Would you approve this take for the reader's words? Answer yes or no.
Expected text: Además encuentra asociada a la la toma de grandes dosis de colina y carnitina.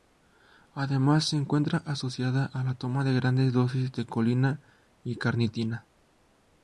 no